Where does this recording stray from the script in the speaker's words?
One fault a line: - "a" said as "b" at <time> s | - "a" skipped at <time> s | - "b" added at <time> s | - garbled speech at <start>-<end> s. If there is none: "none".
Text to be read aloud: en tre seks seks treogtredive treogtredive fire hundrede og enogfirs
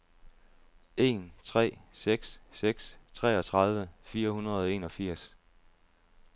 - "treogtredive" skipped at 3.9 s